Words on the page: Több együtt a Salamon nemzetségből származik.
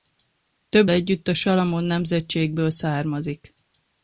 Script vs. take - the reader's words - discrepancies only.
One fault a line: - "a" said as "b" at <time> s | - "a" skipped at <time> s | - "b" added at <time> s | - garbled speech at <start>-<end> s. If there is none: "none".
none